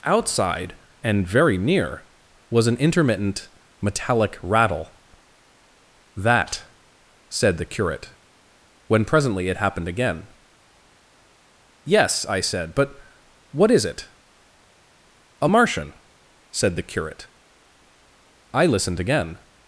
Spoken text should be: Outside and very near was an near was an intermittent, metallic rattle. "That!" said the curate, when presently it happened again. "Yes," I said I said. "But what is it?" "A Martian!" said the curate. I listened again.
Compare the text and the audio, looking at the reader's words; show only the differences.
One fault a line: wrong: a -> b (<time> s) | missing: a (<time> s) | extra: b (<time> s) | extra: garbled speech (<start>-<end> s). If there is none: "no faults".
missing: near was an (2.8 s)
missing: I said (12.8 s)